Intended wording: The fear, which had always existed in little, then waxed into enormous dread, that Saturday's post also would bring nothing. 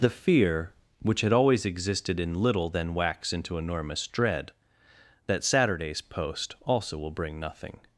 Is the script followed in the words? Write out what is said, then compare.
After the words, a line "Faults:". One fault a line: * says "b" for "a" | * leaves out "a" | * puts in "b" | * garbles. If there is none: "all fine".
The fear, which had always existed in little, then wax into enormous dread, that Saturday's post also will bring nothing.
Faults:
* says "wax" for "waxed"
* says "will" for "would"